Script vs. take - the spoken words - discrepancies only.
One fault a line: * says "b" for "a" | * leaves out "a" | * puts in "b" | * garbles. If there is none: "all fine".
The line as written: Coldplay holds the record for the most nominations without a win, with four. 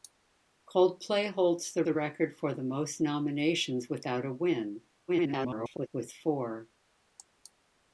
* puts in "the"
* garbles